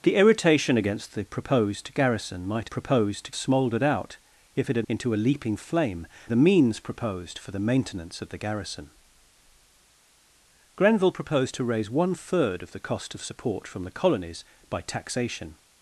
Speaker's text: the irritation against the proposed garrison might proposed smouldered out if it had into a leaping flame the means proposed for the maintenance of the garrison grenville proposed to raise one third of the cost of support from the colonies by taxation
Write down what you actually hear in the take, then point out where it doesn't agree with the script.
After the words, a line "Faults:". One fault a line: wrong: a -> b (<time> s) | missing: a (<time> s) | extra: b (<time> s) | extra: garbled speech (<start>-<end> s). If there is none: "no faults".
the irritation against the proposed garrison might proposed smouldered out if it had into a leaping flame the means proposed for the maintenance of the garrison grenville proposed to raise one third of the cost of support from the colonies by taxation
Faults:
no faults